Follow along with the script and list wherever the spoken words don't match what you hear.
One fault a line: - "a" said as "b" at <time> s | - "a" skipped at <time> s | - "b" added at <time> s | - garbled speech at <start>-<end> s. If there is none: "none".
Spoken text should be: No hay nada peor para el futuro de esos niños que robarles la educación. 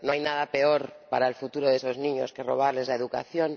none